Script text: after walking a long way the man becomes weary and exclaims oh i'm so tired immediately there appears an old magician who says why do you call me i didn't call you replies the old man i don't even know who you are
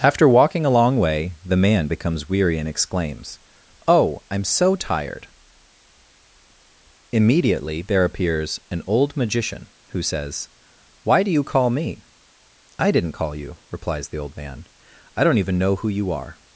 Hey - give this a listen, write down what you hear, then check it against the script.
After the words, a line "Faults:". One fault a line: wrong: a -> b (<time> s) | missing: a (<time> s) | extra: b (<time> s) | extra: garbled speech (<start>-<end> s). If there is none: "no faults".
after walking a long way the man becomes weary and exclaims oh i'm so tired immediately there appears an old magician who says why do you call me i didn't call you replies the old man i don't even know who you are
Faults:
no faults